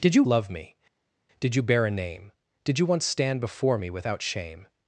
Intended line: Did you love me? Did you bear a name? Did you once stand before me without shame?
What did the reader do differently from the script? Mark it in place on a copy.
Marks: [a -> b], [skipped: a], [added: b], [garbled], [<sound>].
Did you love me? Did you bear a name? Did you once stand before me without shame?